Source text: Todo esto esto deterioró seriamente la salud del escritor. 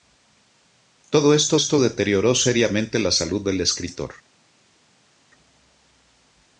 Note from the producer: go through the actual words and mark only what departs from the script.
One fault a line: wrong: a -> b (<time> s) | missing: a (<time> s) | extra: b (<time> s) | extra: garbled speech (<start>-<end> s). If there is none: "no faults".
no faults